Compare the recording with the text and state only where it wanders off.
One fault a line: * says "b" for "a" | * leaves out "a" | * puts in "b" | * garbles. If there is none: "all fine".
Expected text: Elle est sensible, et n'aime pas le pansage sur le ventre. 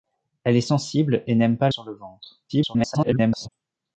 * leaves out "le pansage"
* garbles